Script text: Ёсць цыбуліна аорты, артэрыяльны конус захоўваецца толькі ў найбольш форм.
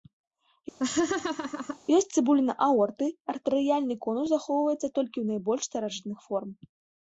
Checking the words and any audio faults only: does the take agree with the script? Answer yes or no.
no